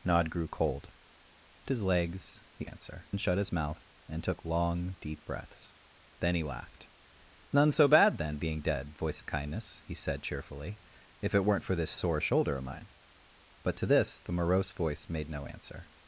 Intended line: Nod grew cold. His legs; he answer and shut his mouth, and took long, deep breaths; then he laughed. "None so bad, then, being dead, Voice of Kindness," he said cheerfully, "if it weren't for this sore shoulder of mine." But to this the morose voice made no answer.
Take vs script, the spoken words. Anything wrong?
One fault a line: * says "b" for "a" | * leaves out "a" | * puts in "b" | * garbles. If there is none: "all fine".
all fine